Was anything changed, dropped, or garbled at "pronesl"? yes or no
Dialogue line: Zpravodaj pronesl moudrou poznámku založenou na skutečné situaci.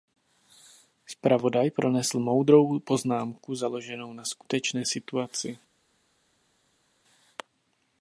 no